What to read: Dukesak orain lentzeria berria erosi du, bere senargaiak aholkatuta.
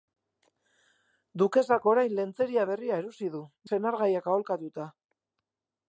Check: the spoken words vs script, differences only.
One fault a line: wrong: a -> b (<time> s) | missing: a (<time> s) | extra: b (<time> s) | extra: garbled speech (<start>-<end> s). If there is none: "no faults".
missing: bere (3.4 s)